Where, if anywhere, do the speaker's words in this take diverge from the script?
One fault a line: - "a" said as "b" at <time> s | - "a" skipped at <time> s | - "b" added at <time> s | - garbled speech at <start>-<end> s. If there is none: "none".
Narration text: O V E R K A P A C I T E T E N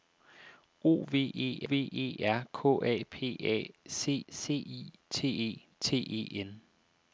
- "V E" added at 1.6 s
- "C" added at 4.3 s